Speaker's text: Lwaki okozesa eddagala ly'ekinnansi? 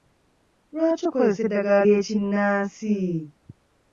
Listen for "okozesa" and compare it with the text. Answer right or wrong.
right